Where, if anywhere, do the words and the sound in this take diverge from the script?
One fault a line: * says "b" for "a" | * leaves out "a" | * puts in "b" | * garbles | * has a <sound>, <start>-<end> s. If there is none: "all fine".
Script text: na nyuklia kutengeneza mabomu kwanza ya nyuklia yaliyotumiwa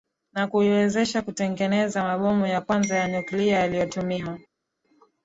* says "kuiwezesha" for "nyuklia"
* puts in "ya"